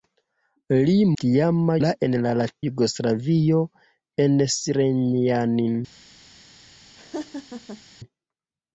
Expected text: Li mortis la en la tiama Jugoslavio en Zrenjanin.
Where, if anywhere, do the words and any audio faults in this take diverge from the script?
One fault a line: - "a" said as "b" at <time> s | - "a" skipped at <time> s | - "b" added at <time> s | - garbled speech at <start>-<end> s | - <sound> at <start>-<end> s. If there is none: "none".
- "mortis" said as "tiama" at 1.2 s
- "tiama" skipped at 2.5 s
- laugh at 6.9-7.8 s